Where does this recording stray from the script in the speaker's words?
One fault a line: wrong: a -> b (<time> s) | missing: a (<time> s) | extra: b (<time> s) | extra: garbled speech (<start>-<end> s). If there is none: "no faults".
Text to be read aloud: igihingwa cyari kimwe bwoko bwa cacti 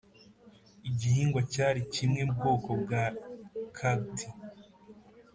no faults